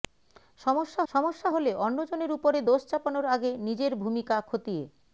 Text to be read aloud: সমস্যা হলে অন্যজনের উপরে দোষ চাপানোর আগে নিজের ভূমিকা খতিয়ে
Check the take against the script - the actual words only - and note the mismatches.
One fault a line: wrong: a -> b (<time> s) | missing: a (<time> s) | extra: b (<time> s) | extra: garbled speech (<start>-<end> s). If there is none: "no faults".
extra: সমস্যা (1.1 s)